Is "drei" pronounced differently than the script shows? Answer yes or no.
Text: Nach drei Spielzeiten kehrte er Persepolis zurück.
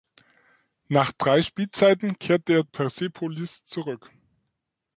no